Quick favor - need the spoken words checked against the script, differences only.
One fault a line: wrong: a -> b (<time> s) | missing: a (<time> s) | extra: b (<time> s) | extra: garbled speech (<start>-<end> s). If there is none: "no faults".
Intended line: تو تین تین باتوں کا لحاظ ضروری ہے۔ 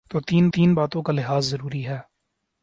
no faults